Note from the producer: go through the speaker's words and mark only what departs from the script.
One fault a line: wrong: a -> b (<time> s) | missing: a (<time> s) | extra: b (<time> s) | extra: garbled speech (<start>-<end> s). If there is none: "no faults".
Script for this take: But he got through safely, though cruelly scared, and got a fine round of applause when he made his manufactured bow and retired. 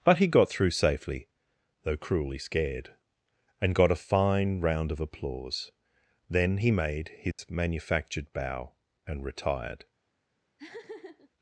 wrong: when -> then (6.3 s)